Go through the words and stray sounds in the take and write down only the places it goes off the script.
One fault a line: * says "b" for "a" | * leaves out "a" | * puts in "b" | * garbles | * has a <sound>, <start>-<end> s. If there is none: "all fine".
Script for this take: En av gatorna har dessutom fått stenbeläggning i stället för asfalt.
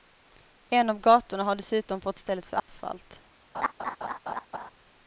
* leaves out "stenbeläggning"
* has a dropout, 2.6-2.7 s
* has a laugh, 3.5-4.7 s